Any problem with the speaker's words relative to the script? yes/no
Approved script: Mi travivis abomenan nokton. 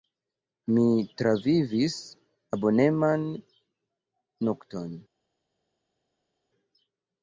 no